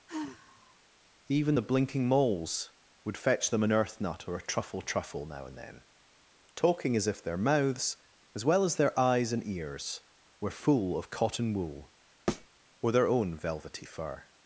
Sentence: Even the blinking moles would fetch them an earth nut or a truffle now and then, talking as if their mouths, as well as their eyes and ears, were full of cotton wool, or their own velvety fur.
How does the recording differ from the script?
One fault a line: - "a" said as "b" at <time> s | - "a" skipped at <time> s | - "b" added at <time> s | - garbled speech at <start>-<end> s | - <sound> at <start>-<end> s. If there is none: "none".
- sigh at 0.1-0.8 s
- "truffle" added at 4.8 s
- thud at 12.3-12.5 s